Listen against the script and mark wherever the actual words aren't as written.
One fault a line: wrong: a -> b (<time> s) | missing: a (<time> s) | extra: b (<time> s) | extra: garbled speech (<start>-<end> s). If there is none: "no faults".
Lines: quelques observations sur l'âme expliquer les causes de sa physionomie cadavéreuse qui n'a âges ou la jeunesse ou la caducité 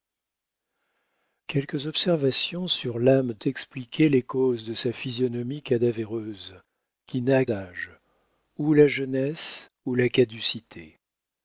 no faults